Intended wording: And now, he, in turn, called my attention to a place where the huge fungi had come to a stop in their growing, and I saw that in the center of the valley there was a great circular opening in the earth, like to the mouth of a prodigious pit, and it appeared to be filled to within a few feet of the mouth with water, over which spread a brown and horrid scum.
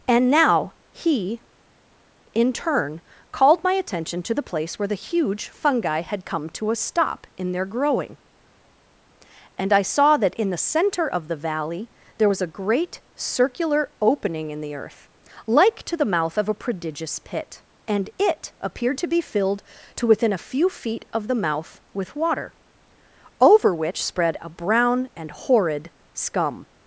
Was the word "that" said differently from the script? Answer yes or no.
no